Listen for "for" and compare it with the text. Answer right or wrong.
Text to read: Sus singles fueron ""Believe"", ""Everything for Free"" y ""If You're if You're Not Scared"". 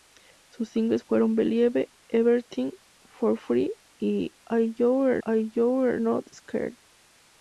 right